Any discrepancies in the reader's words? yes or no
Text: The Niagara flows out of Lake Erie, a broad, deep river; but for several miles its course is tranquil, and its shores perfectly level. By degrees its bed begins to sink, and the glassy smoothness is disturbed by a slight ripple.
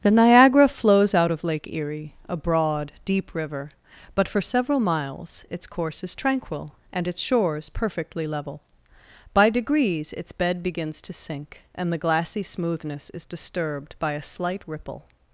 no